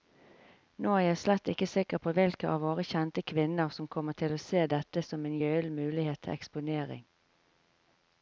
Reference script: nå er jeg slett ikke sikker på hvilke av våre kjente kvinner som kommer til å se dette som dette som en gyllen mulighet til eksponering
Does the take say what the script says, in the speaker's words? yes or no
no